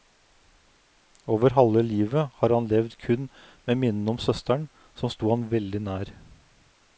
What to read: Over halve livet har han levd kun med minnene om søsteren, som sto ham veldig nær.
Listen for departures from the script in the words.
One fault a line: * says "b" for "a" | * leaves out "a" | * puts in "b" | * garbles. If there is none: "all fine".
all fine